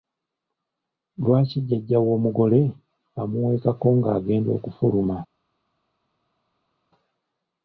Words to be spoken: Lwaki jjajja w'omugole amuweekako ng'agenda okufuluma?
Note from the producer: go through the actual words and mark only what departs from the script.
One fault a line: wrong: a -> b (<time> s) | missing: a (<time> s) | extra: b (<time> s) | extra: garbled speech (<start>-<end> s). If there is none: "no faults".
no faults